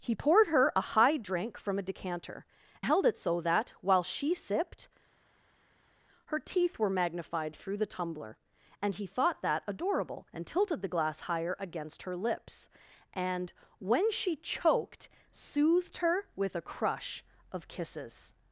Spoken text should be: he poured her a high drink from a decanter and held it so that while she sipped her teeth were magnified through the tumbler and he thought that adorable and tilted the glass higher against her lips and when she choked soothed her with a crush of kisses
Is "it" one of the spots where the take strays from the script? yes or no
no